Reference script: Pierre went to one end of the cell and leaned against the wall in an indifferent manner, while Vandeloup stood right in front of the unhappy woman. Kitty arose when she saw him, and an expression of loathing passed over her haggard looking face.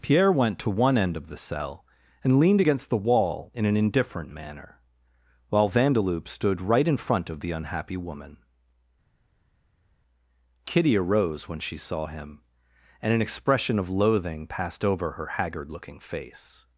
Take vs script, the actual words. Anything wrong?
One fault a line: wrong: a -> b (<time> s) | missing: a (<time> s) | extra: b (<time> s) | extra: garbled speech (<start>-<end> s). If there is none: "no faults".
no faults